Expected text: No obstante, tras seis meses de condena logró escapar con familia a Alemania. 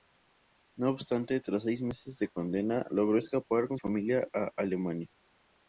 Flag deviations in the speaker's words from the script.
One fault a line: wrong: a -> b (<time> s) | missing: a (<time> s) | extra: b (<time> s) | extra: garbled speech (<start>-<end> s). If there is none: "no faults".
no faults